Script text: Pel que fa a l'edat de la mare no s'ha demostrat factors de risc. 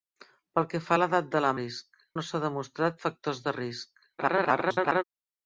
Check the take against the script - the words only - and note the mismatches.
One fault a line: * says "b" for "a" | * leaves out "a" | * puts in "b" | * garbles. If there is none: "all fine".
* says "risc" for "mare"
* garbles